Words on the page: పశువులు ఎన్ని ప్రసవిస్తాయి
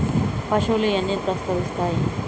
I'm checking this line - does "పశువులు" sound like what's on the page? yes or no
yes